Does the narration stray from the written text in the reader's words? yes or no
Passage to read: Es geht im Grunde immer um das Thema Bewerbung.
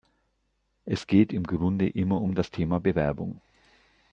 no